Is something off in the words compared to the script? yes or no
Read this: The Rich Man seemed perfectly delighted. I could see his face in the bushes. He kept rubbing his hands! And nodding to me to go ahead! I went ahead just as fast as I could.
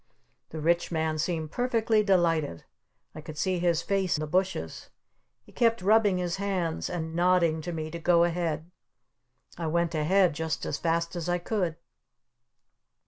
yes